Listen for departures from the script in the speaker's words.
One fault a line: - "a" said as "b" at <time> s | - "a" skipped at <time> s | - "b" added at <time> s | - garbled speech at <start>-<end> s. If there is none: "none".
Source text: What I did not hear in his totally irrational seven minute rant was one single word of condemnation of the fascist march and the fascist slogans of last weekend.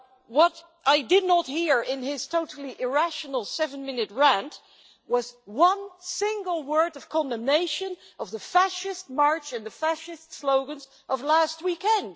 none